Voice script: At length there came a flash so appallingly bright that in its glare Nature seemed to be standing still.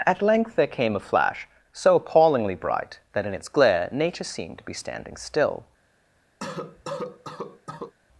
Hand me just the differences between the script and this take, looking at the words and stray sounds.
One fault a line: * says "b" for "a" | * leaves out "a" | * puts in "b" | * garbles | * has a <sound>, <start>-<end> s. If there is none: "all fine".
* has a cough, 6.4-7.9 s